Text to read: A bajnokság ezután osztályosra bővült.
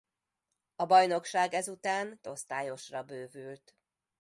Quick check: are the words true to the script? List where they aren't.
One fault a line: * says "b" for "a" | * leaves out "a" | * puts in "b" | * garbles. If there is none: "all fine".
all fine